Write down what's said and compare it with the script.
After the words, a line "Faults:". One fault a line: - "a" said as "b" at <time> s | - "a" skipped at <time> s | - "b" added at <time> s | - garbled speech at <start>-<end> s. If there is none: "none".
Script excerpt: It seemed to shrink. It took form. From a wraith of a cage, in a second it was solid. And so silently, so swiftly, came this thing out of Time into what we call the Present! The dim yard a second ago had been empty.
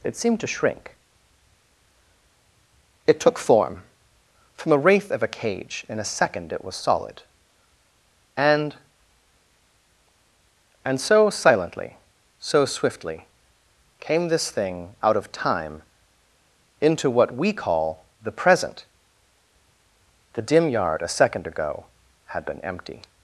It seemed to shrink. It took form. From a wraith of a cage, in a second it was solid. And And so silently, so swiftly, came this thing out of Time into what we call the Present! The dim yard a second ago had been empty.
Faults:
- "And" added at 10.8 s